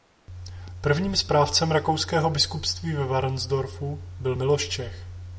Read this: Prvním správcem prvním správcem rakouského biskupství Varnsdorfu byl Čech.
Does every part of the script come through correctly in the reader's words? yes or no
no